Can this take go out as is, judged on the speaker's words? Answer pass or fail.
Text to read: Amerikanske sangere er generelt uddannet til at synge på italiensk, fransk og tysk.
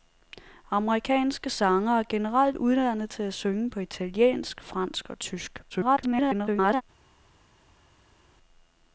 fail